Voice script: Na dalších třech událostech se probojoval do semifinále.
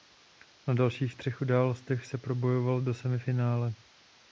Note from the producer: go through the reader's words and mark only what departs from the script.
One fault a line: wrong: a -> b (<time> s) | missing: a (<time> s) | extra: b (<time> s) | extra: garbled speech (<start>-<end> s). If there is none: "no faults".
no faults